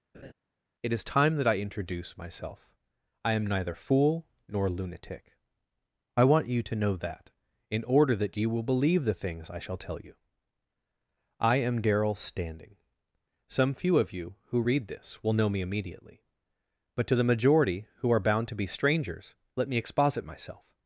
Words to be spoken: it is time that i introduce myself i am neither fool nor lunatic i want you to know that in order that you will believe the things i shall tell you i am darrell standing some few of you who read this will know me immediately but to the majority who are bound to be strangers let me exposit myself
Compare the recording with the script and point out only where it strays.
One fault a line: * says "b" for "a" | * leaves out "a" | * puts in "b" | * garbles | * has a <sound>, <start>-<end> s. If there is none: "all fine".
* has a laugh, 0.1-0.3 s